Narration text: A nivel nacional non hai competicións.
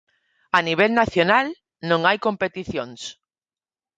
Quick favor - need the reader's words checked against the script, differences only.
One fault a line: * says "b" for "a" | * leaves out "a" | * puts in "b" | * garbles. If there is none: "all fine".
all fine